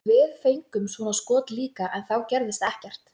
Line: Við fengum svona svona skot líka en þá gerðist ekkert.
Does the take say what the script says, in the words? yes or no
no